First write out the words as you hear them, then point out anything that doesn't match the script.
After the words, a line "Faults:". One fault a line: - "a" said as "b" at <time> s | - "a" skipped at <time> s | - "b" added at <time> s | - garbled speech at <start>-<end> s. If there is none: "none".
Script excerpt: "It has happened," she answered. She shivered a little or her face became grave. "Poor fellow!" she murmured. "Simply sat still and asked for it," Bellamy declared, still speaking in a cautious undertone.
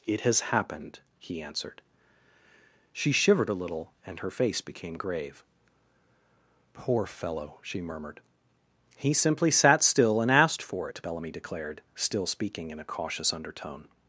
"It has happened," he answered. She shivered a little and her face became grave. "Poor fellow!" she murmured. "He simply sat still and asked for it," Bellamy declared, still speaking in a cautious undertone.
Faults:
- "she" said as "he" at 1.2 s
- "or" said as "and" at 4.0 s
- "He" added at 9.0 s